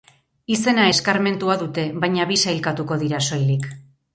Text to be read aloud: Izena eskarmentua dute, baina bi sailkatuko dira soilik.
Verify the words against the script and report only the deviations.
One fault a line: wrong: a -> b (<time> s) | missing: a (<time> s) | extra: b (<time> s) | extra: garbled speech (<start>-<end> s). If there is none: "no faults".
no faults